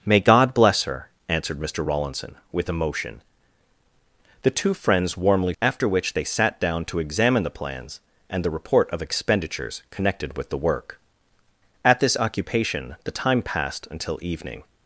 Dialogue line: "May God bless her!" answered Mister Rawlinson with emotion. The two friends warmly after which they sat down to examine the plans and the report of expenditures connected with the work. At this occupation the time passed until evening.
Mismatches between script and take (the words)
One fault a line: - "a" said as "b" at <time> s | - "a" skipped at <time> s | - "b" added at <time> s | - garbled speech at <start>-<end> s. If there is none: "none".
none